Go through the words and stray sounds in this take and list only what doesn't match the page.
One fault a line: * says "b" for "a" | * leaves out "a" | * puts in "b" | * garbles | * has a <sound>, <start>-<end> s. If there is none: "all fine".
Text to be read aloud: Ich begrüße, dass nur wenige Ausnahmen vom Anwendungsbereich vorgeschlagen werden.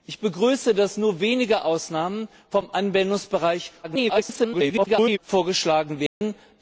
* garbles
* has a dropout, 6.1-6.2 s